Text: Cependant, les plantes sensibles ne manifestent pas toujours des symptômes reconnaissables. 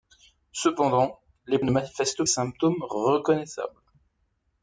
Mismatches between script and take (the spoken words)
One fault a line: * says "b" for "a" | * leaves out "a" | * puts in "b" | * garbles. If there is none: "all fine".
* leaves out "plantes sensibles"
* leaves out "pas toujours des"